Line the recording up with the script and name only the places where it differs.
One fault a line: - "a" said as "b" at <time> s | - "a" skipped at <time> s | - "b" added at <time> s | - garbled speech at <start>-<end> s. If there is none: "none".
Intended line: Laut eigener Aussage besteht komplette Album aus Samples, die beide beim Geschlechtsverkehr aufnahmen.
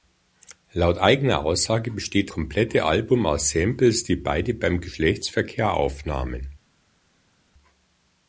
none